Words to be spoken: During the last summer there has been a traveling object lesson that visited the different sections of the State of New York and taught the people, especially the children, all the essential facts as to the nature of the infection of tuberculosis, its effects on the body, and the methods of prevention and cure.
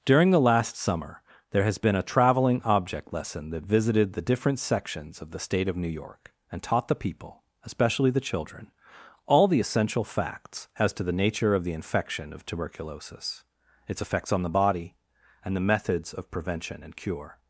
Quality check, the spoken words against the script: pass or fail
pass